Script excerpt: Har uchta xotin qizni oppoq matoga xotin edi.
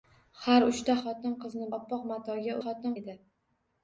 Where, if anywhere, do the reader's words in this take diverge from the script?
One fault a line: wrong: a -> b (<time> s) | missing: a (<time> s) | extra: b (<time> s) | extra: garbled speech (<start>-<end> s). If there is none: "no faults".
no faults